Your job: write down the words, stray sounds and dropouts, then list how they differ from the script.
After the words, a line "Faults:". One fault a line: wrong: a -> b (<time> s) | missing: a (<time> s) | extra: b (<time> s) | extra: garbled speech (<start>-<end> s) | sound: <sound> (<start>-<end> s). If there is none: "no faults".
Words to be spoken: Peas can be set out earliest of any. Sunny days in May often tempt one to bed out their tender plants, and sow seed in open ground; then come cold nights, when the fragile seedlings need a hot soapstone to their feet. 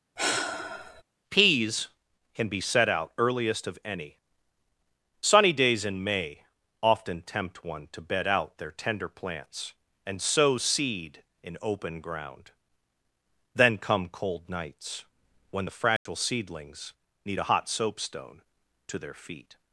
Peas can be set out earliest of any. Sunny days in May often tempt one to bed out their tender plants, and sow seed in open ground; then come cold nights, when the fragile seedlings need a hot soapstone to their feet.
Faults:
sound: sigh (0.2-1.0 s)
sound: dropout (16.0-16.1 s)